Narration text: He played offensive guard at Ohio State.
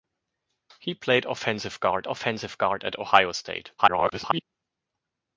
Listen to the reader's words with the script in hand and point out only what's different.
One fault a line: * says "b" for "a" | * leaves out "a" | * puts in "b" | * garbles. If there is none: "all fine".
* puts in "offensive guard"
* garbles